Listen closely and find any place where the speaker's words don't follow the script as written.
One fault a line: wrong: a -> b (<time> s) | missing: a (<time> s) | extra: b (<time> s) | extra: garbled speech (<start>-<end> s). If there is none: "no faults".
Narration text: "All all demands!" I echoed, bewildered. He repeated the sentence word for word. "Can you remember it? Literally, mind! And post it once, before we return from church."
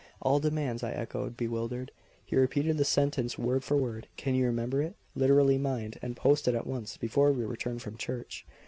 missing: all (0.4 s)
extra: at (6.5 s)